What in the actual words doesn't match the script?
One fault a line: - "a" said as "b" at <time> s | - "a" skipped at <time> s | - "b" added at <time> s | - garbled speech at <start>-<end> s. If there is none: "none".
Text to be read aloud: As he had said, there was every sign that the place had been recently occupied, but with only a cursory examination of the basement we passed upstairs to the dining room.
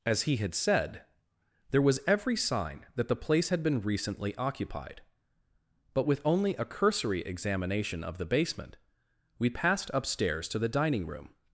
none